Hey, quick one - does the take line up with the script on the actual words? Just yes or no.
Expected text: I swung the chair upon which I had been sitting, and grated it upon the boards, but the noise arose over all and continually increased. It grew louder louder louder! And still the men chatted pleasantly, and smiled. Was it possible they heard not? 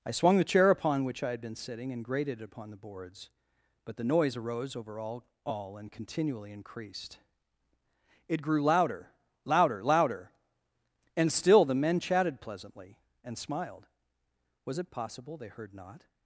no